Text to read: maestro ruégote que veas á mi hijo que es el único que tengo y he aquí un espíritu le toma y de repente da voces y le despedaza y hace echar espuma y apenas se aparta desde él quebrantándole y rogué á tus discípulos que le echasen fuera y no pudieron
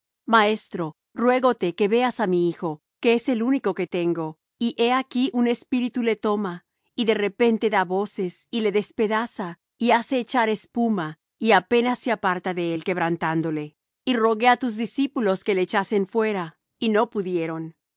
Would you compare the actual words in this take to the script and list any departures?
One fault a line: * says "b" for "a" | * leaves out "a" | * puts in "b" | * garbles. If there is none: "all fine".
* says "de" for "desde"